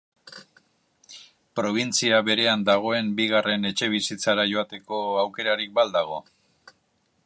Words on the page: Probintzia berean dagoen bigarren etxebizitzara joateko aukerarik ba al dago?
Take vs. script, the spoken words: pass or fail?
pass